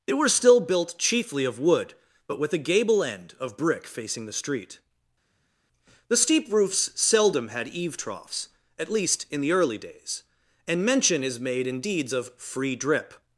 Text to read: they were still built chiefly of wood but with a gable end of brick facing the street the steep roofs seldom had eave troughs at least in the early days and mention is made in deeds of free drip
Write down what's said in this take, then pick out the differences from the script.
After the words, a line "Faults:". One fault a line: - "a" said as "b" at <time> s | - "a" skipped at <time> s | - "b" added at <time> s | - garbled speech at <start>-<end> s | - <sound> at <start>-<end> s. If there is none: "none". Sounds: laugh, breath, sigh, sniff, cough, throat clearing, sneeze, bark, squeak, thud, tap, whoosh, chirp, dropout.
they were still built chiefly of wood but with a gable end of brick facing the street the steep roofs seldom had eave troughs at least in the early days and mention is made in deeds of free drip
Faults:
none